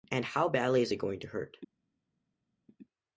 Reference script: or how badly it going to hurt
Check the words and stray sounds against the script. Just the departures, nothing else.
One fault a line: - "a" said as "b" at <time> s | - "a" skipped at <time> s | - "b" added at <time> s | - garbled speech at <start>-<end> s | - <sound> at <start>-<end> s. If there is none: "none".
- "or" said as "and" at 0.1 s
- "is" added at 0.8 s